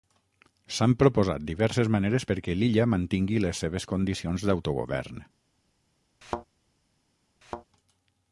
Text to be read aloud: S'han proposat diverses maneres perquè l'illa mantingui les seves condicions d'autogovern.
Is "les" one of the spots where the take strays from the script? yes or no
no